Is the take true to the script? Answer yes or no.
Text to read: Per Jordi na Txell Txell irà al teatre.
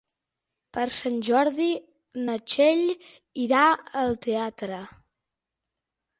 no